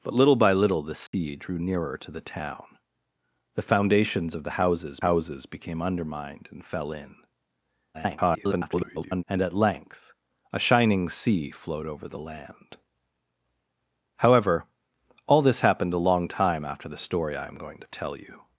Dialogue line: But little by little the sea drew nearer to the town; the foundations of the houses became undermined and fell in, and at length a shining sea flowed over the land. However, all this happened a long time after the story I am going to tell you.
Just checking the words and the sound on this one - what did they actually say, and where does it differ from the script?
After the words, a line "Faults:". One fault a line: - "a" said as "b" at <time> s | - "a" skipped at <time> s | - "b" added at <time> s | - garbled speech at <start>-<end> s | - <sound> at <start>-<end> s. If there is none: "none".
But little by little the sea drew nearer to the town; the foundations of the houses houses became undermined and fell in, [garbled] and at length a shining sea flowed over the land. However, all this happened a long time after the story I am going to tell you.
Faults:
- dropout at 1.1-1.1 s
- "houses" added at 5.0 s
- garbled speech at 7.9-9.2 s